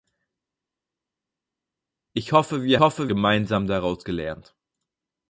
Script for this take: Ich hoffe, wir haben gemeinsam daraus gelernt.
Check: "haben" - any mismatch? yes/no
yes